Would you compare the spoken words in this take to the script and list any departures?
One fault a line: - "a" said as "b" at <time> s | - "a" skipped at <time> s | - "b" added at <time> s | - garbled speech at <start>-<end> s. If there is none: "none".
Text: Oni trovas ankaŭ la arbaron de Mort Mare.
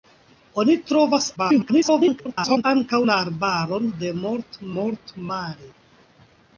- garbled speech at 1.4-2.6 s
- "Mort" added at 4.7 s